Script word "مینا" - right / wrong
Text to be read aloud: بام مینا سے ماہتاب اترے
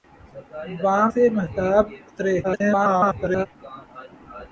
wrong